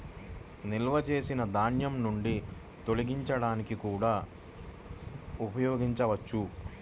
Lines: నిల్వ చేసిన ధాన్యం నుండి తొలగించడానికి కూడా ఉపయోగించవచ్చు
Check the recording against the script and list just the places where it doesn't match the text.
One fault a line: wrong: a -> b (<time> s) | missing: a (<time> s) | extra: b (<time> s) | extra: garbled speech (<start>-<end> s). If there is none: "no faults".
no faults